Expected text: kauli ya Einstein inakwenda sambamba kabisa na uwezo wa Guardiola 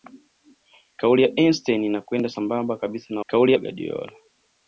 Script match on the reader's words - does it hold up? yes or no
no